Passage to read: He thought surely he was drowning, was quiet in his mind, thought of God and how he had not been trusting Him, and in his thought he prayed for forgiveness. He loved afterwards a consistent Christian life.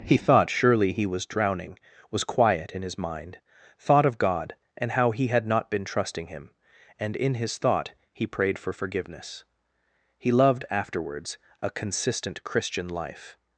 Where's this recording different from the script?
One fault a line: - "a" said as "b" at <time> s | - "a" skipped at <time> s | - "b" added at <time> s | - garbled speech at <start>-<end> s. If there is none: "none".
none